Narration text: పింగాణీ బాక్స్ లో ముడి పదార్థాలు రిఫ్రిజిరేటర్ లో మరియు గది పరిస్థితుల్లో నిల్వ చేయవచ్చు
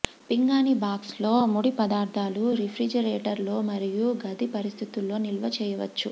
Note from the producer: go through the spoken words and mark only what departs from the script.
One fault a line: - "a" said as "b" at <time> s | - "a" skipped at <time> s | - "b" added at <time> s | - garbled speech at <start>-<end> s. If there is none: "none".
none